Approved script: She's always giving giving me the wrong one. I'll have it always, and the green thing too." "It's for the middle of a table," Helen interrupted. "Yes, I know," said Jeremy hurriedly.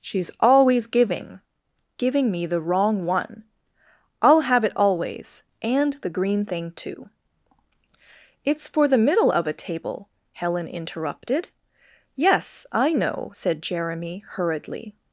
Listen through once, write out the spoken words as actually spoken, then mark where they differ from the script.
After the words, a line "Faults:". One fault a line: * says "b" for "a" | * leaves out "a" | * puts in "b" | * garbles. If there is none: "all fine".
She's always giving giving me the wrong one. I'll have it always, and the green thing too." "It's for the middle of a table," Helen interrupted. "Yes, I know," said Jeremy hurriedly.
Faults:
all fine